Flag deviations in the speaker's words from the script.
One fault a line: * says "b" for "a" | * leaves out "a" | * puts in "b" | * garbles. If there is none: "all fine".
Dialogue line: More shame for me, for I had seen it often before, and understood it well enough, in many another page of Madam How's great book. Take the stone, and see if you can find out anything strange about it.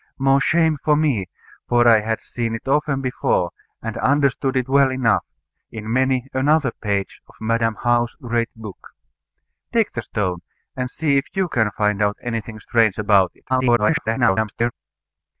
* garbles